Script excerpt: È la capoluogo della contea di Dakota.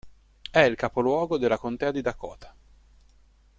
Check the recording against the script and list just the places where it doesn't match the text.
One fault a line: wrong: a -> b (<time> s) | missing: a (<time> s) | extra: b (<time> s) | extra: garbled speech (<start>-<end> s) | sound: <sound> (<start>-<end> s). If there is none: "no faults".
wrong: la -> il (0.6 s)